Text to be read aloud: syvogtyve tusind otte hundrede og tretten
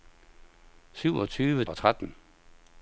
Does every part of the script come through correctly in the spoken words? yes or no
no